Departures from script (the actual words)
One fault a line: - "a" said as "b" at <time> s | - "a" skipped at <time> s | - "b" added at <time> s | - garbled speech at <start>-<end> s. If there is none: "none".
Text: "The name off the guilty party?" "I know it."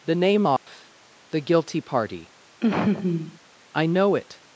none